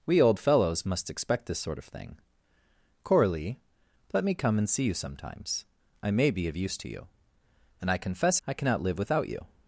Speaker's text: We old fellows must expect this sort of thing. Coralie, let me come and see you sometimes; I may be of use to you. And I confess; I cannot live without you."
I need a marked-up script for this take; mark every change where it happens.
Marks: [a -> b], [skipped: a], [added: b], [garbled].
We old fellows must expect this sort of thing. Coralie, let me come and see you sometimes; I may be of use to you. And I confess; I cannot live without you."